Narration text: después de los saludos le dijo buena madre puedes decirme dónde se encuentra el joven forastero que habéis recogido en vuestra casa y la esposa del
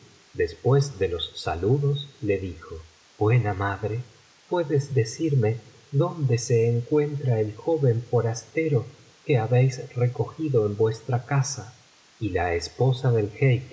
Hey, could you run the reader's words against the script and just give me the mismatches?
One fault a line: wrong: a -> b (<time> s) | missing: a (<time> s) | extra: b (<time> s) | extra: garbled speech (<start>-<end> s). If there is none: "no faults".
no faults